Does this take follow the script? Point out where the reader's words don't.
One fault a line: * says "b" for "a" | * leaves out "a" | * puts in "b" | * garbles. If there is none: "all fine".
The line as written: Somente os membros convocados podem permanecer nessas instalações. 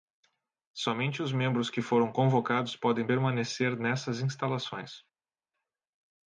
* puts in "que foram"